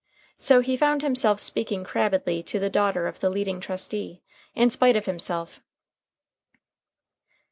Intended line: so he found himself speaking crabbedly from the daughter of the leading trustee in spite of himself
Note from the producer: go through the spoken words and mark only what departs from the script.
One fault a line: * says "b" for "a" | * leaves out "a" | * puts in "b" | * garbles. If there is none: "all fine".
* says "to" for "from"